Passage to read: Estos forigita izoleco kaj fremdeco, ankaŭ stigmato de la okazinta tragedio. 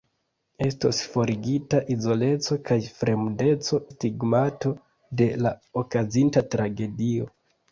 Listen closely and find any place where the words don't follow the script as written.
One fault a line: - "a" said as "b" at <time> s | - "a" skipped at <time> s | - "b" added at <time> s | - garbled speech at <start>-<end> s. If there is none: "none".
- "ankaŭ" skipped at 3.8 s